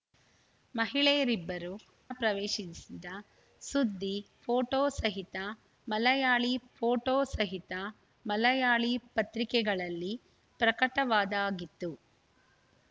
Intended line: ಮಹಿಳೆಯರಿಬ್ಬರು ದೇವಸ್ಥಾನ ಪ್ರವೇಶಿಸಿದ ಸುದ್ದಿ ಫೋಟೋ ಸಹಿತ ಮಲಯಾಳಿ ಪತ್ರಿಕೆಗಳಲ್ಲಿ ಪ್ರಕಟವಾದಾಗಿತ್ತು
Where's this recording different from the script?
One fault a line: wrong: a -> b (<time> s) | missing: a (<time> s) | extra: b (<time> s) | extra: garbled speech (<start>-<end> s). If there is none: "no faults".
missing: ದೇವಸ್ಥಾನ (1.7 s)
extra: ಫೋಟೋ ಸಹಿತ ಮಲಯಾಳಿ (6.8 s)